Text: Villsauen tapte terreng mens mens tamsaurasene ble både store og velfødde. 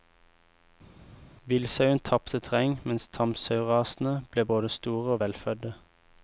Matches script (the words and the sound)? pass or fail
fail